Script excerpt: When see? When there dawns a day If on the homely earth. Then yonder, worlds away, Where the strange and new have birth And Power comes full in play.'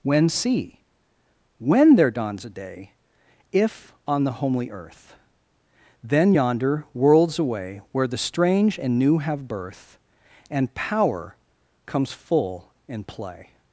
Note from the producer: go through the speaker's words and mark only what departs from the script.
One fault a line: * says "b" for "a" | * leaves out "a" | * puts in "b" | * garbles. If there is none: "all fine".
all fine